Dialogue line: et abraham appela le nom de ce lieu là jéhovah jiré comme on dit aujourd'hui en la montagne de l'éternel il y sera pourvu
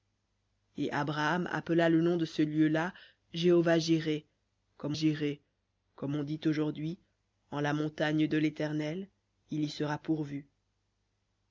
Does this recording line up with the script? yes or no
no